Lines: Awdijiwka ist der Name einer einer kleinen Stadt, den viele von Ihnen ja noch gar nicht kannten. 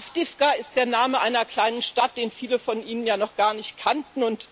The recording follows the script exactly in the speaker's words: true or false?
false